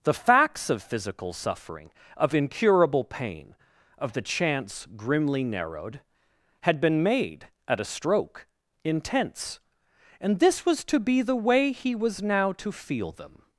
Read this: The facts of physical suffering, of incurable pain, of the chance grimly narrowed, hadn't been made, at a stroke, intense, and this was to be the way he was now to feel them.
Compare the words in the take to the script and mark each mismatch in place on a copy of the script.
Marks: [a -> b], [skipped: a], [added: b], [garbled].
The facts of physical suffering, of incurable pain, of the chance grimly narrowed, [hadn't -> had] been made, at a stroke, intense, and this was to be the way he was now to feel them.